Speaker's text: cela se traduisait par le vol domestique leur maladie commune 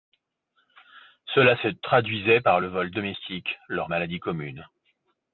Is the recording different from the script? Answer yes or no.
no